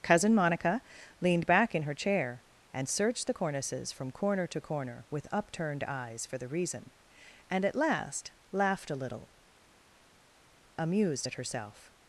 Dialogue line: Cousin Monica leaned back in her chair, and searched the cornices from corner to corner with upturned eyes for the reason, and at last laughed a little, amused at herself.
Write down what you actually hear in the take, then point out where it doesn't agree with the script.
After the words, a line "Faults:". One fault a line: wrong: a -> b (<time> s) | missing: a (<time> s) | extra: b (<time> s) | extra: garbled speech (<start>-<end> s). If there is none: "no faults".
Cousin Monica leaned back in her chair, and searched the cornices from corner to corner with upturned eyes for the reason, and at last laughed a little, amused at herself.
Faults:
no faults